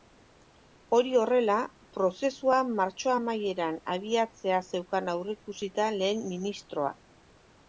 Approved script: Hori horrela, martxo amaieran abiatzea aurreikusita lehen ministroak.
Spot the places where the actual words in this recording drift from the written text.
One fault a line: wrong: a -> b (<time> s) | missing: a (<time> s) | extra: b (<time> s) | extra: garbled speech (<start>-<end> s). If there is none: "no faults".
extra: prozesua (2.0 s)
extra: zeukan (4.7 s)